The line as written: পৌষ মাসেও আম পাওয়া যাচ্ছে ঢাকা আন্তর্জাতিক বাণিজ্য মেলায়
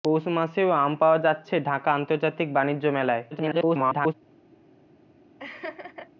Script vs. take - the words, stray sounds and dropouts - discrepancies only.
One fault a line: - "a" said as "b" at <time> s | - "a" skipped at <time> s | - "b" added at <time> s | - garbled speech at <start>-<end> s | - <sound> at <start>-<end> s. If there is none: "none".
- garbled speech at 3.3-4.1 s
- laugh at 5.4-6.1 s